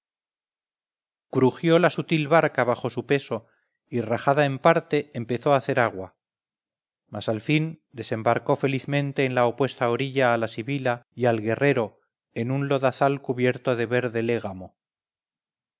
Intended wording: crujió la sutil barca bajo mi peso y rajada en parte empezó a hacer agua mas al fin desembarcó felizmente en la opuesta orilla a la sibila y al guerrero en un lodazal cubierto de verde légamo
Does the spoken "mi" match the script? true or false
false